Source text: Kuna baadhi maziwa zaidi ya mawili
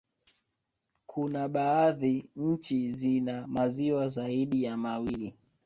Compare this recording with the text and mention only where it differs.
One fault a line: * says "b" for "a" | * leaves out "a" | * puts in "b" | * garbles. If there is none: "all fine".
* puts in "nchi zina"